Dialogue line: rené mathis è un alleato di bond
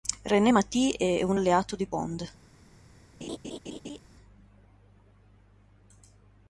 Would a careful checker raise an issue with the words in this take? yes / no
no